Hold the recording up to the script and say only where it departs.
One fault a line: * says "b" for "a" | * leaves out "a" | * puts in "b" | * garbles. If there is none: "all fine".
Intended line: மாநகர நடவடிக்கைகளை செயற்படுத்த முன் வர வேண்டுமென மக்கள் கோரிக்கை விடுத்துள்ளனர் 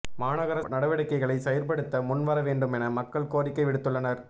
all fine